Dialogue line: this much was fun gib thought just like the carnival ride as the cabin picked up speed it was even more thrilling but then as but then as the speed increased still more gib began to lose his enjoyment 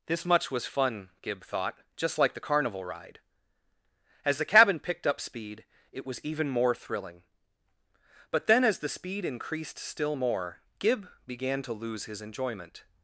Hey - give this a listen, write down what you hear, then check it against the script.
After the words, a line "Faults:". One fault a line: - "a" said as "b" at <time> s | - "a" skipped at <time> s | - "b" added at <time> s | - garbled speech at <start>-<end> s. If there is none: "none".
this much was fun gib thought just like the carnival ride as the cabin picked up speed it was even more thrilling but then as the speed increased still more gib began to lose his enjoyment
Faults:
- "but then as" skipped at 8.8 s